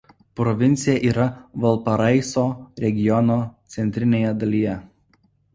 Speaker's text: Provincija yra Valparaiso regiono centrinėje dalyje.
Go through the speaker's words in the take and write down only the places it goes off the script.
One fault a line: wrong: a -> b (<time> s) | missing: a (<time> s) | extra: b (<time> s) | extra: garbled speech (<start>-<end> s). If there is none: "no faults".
no faults